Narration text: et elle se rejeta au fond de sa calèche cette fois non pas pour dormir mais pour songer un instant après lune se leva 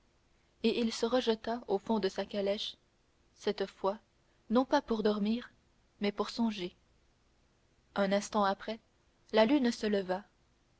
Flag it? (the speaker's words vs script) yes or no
yes